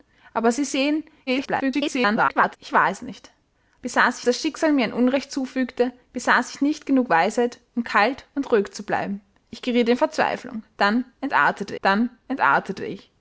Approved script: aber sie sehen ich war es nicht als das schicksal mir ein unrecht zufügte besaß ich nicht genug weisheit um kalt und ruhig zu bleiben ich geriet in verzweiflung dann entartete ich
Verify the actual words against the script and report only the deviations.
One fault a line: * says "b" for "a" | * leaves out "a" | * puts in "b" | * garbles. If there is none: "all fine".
* garbles
* says "besaß" for "als"
* puts in "dann entartete"